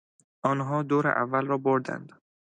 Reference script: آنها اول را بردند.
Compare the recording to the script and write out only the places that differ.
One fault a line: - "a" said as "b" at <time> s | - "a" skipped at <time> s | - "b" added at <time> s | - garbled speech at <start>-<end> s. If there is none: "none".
- "دور" added at 0.8 s